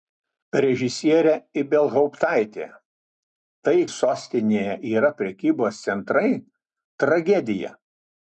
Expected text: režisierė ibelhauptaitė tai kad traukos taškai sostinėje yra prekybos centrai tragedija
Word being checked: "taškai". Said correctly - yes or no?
no